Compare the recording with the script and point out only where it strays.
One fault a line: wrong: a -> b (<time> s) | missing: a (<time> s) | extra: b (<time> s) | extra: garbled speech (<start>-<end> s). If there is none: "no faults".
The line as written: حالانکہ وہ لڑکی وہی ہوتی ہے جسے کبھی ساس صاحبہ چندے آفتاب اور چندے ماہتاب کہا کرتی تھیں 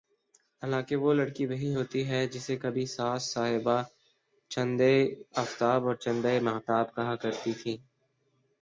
no faults